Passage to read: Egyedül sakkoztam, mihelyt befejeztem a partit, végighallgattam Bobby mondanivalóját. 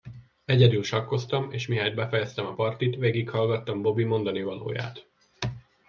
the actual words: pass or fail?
fail